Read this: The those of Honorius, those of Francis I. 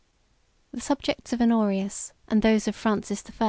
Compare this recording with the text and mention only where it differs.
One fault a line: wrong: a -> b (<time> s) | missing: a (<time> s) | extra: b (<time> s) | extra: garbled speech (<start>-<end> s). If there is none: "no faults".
wrong: those -> subjects (0.8 s)
extra: and (2.3 s)